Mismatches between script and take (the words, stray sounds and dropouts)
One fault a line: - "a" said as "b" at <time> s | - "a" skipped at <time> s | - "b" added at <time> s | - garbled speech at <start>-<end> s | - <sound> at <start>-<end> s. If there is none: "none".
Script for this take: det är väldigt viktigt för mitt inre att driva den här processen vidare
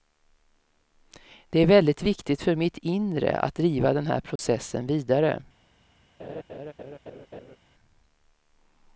- dropout at 4.4-4.4 s
- laugh at 6.2-7.6 s